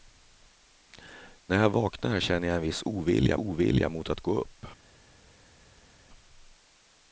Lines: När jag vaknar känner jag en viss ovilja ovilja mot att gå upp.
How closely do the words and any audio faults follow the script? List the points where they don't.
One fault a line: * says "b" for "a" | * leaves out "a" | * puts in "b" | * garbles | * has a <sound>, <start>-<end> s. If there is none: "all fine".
all fine